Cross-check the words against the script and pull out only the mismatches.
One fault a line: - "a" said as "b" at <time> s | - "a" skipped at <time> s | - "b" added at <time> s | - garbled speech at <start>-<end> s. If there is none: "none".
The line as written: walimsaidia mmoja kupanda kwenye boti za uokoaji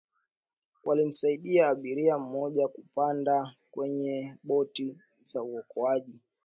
- "abiria" added at 1.7 s